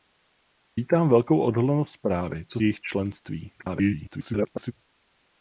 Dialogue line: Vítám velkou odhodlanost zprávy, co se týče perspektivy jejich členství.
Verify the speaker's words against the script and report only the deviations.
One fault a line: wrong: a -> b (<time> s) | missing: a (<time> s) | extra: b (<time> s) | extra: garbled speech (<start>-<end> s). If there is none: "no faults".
missing: se týče perspektivy (2.6 s)
extra: garbled speech (3.6-4.7 s)